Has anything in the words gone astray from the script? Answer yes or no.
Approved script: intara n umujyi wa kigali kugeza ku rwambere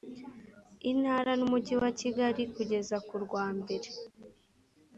no